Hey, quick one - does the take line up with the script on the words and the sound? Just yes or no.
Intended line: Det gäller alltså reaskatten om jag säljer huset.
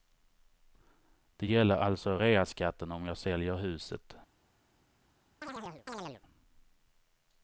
no